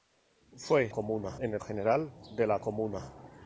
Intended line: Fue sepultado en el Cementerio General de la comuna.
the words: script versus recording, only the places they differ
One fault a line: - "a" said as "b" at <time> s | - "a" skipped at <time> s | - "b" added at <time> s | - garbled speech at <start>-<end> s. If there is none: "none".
- "sepultado" said as "comuna" at 0.9 s
- "Cementerio" skipped at 1.6 s